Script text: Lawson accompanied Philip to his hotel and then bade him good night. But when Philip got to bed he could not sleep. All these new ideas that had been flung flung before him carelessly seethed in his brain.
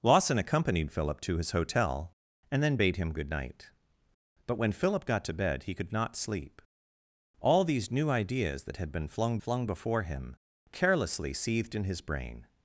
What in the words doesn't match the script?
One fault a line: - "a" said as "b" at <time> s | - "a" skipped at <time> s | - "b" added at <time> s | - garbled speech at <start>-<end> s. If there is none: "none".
none